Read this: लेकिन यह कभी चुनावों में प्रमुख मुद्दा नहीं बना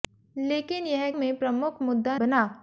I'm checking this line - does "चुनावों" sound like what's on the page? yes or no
no